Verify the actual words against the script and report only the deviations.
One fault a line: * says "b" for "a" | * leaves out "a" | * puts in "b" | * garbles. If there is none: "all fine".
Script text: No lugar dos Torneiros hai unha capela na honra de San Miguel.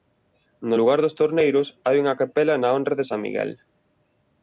all fine